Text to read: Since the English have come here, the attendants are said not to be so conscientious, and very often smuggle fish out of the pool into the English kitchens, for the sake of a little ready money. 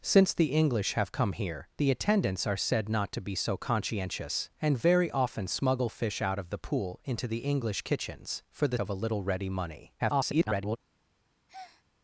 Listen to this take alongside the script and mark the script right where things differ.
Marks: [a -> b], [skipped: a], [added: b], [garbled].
Since the English have come here, the attendants are said not to be so conscientious, and very often smuggle fish out of the pool into the English kitchens, for the [skipped: sake] of a little ready money. [garbled]